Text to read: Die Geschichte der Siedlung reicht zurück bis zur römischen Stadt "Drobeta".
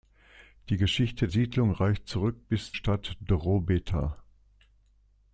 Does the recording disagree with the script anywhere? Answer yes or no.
yes